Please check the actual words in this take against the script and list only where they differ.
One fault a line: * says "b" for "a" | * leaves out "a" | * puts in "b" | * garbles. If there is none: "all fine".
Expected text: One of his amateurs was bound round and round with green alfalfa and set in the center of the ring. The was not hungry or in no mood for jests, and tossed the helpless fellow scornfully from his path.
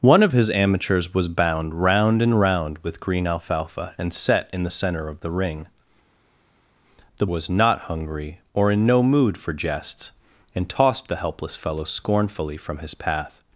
all fine